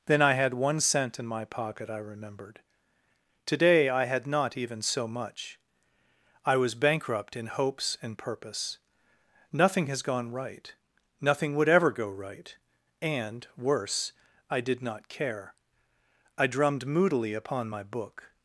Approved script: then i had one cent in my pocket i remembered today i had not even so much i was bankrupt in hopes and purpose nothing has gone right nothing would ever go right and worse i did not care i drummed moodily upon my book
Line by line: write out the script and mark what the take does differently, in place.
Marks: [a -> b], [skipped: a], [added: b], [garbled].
then i had one cent in my pocket i remembered today i had not even so much i was bankrupt in hopes and purpose nothing has gone right nothing would ever go right and worse i did not care i drummed moodily upon my book